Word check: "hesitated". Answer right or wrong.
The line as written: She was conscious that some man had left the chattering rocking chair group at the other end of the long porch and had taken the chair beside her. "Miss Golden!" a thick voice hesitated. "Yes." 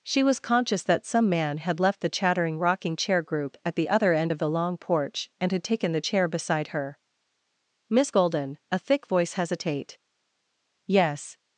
wrong